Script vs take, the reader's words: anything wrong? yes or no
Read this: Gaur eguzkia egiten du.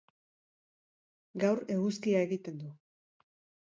no